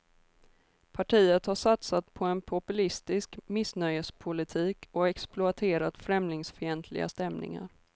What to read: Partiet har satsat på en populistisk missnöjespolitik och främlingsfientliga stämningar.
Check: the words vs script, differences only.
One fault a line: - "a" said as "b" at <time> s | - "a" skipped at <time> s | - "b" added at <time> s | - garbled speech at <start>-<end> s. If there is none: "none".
- "exploaterat" added at 5.1 s